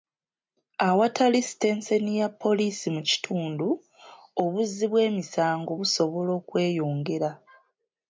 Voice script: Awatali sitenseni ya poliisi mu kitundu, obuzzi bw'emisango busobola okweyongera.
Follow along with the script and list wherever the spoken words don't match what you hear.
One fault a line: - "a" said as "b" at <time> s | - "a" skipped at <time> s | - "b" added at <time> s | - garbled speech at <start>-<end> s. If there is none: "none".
none